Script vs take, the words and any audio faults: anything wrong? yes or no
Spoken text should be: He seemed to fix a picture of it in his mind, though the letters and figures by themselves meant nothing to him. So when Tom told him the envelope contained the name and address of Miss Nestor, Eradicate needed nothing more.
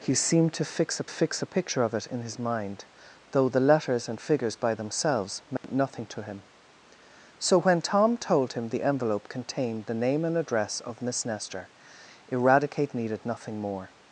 yes